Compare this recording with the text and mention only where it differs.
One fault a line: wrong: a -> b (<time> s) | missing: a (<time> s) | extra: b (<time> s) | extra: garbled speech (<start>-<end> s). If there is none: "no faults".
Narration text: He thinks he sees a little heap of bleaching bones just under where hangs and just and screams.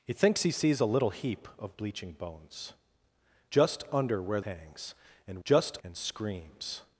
no faults